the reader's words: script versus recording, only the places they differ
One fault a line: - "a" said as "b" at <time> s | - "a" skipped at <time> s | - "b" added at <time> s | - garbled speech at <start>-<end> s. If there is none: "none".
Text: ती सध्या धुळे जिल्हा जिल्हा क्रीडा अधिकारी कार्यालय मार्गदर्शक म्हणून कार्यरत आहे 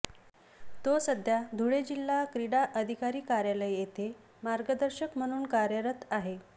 - "ती" said as "तो" at 0.8 s
- "जिल्हा" skipped at 2.2 s
- "येथे" added at 3.7 s